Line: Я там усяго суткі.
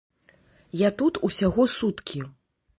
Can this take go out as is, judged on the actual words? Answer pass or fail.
fail